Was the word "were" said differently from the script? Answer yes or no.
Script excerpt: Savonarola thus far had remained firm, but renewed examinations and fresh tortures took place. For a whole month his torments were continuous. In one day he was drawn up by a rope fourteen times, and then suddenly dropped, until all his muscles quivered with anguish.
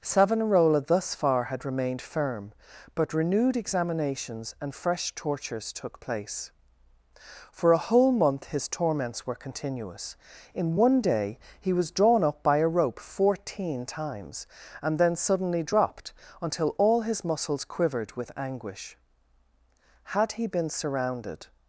no